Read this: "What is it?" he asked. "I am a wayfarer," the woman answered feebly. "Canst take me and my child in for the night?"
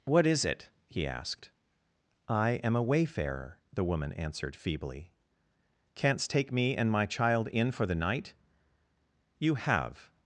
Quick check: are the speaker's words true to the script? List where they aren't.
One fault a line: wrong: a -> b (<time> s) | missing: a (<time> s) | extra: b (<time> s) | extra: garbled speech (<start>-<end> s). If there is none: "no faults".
extra: You have (9.4 s)